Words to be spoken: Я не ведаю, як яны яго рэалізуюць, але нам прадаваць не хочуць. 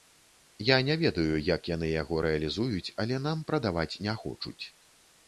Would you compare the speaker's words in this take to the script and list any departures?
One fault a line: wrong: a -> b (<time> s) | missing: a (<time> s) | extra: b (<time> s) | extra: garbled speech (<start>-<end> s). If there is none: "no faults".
no faults